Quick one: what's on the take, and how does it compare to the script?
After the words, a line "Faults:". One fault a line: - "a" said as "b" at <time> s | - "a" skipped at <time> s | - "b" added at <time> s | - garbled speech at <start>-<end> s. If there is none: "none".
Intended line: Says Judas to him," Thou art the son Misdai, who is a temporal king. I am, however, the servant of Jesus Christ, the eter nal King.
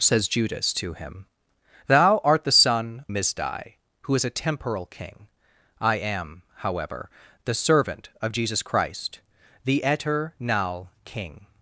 Says Judas to him," Thou art the son Misdai, who is a temporal king. I am, however, the servant of Jesus Christ, the eter nal King.
Faults:
none